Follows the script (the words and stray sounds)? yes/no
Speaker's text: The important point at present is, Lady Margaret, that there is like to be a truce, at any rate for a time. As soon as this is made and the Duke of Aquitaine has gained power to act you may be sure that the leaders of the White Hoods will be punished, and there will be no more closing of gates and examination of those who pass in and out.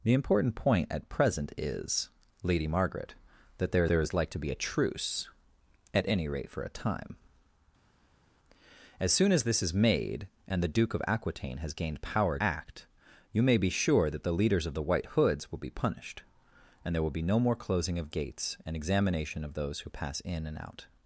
no